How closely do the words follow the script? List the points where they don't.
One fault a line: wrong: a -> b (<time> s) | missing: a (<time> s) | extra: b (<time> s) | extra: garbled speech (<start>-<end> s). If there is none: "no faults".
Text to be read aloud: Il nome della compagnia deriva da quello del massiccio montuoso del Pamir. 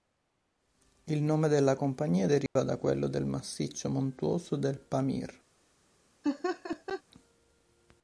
no faults